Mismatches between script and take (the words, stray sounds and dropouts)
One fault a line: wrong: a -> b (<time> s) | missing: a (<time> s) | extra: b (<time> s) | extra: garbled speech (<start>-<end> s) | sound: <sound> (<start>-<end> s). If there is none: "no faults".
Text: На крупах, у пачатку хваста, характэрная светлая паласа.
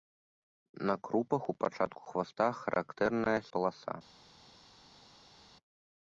missing: светлая (3.4 s)